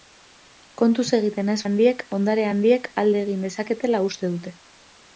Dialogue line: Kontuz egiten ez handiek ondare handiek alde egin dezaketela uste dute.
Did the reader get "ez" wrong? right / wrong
right